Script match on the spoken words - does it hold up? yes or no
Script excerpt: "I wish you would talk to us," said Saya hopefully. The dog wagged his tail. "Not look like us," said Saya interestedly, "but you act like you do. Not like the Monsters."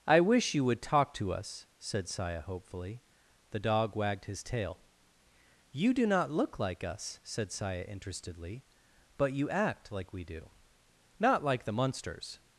no